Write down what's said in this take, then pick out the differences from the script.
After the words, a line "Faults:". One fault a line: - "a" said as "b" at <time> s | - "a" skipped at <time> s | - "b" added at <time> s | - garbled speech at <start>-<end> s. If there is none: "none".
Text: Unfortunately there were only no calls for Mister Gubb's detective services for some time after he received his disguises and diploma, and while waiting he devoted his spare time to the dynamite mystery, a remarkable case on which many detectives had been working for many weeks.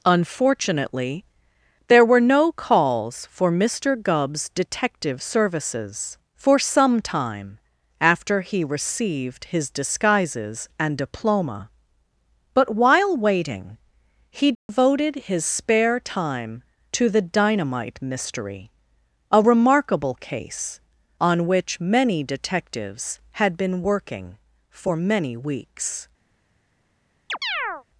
Unfortunately there were no calls for Mister Gubb's detective services for some time after he received his disguises and diploma, but while waiting he devoted his spare time to the dynamite mystery, a remarkable case on which many detectives had been working for many weeks.
Faults:
- "only" skipped at 2.2 s
- "and" said as "but" at 12.6 s